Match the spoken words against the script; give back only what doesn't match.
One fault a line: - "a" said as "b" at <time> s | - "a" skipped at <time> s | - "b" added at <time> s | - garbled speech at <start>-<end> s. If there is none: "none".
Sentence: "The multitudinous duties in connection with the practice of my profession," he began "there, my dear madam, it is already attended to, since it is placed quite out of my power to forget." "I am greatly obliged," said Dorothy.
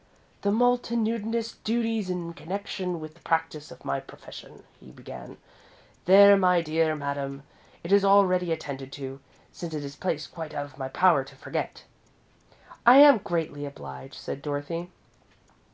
none